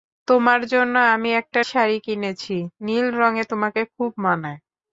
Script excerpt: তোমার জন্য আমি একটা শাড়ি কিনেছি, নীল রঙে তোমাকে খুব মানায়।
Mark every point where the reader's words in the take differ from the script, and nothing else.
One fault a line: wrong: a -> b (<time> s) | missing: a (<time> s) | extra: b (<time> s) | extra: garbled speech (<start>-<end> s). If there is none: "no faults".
no faults